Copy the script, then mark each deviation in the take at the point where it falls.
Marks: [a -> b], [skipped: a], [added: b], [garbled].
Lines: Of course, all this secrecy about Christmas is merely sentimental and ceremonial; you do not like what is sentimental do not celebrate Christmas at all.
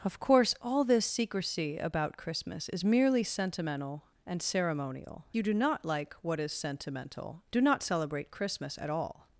Of course, all this secrecy about Christmas is merely sentimental and ceremonial; you do not like what is sentimental do not celebrate Christmas at all.